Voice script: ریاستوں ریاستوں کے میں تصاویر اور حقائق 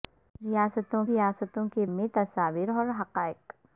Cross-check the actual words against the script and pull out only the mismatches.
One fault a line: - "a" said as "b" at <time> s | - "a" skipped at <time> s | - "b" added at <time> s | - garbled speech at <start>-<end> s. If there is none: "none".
none